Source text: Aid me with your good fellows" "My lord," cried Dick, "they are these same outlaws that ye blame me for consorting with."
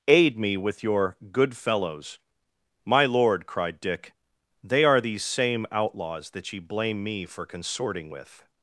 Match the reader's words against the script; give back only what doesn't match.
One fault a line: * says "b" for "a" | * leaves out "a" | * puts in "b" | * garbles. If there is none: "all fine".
all fine